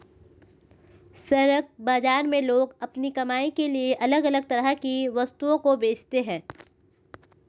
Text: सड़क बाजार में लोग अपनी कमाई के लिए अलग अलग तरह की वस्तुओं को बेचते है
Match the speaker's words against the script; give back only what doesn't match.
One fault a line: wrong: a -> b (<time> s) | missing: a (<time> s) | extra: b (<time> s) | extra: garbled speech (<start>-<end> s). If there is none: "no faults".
no faults